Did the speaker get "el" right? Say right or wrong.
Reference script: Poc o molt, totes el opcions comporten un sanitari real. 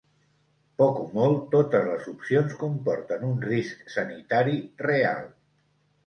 wrong